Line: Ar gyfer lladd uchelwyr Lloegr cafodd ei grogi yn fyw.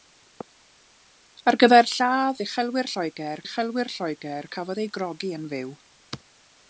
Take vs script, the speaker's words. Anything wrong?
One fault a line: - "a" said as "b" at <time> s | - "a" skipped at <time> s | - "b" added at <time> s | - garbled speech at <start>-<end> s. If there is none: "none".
- "uchelwyr Lloegr" added at 3.4 s